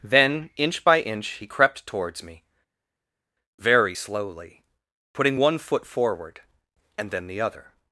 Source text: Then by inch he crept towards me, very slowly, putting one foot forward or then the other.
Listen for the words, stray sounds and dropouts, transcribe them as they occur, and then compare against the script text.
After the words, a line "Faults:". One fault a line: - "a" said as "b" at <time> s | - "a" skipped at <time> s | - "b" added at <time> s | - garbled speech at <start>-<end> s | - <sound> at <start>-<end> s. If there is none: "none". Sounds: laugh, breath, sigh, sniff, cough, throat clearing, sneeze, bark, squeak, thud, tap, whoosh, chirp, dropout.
Then inch by inch he crept towards me, very slowly, putting one foot forward and then the other.
Faults:
- "inch" added at 0.6 s
- "or" said as "and" at 7.0 s